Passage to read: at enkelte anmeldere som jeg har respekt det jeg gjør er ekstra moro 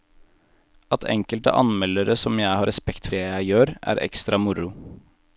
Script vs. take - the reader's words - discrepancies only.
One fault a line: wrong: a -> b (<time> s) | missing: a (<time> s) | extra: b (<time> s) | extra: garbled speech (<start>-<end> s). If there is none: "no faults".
no faults